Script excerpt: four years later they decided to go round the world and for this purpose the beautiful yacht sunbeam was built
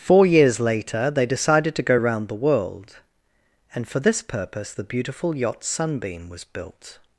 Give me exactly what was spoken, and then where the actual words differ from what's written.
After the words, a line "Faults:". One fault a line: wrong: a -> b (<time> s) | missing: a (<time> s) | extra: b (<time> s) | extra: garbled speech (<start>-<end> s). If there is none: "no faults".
four years later they decided to go round the world and for this purpose the beautiful yacht sunbeam was built
Faults:
no faults